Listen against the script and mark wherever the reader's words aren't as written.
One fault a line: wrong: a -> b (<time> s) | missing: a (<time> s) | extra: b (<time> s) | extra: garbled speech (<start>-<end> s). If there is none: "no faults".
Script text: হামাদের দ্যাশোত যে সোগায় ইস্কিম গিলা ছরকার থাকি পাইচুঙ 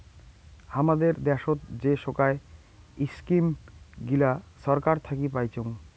no faults